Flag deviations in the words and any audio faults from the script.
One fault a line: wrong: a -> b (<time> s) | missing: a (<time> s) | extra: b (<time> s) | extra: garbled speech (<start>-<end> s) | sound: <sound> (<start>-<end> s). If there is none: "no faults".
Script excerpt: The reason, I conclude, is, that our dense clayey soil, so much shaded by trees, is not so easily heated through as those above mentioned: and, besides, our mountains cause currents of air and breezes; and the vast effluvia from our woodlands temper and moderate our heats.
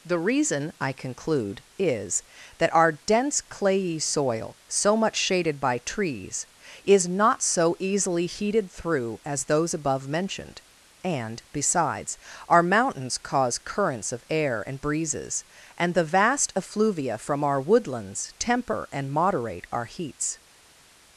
no faults